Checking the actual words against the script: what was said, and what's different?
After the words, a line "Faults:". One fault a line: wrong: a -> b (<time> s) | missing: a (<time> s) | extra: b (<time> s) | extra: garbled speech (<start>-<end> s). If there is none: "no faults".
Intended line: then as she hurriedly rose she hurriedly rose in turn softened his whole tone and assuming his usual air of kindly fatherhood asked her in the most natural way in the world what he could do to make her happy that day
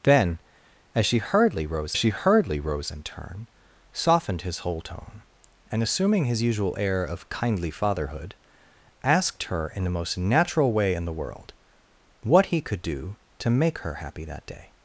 then as she hurriedly rose she hurriedly rose in turn softened his whole tone and assuming his usual air of kindly fatherhood asked her in the most natural way in the world what he could do to make her happy that day
Faults:
no faults